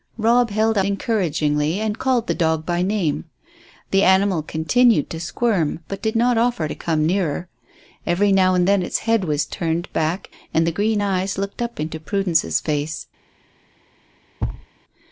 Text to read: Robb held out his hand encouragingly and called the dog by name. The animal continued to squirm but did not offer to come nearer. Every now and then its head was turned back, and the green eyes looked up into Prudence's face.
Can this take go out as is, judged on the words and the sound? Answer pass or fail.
fail